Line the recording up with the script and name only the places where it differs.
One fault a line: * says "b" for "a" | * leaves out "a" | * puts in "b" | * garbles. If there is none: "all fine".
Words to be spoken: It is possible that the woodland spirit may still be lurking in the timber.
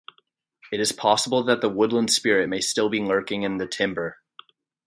all fine